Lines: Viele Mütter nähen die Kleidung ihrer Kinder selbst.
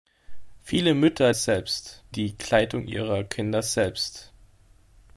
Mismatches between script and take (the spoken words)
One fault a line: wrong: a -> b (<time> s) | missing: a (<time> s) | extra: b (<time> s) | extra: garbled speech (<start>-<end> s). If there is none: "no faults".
wrong: nähen -> selbst (1.3 s)